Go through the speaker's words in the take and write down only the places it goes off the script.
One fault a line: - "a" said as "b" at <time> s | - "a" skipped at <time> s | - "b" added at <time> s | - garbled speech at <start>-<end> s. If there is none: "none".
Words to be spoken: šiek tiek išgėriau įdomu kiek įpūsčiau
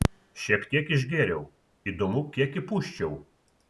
none